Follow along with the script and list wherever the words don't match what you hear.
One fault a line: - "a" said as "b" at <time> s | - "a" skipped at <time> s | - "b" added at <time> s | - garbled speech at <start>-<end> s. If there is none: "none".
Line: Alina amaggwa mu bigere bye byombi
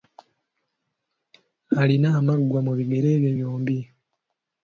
none